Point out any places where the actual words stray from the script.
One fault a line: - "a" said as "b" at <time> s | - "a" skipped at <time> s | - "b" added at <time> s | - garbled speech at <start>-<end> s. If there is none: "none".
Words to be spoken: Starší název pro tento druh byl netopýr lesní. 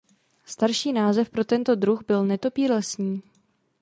none